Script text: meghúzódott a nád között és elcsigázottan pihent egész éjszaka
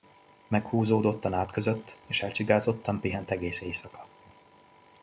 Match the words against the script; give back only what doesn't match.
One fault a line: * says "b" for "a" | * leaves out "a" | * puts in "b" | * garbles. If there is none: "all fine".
all fine